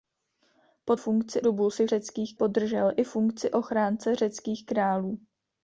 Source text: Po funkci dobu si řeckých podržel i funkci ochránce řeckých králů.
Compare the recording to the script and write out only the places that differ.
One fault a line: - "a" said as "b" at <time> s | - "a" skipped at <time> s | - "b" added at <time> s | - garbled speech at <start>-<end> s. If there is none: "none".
none